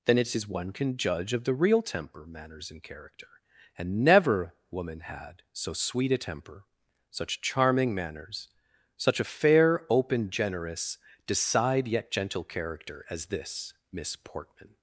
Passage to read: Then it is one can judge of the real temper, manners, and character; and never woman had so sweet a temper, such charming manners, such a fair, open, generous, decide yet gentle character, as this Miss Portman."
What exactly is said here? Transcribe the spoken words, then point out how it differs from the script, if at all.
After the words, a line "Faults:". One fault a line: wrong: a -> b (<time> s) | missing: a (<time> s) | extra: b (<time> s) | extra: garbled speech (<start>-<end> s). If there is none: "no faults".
Then it is one can judge of the real temper, manners, and character; and never woman had so sweet a temper, such charming manners, such a fair, open, generous, decide yet gentle character, as this Miss Portman."
Faults:
no faults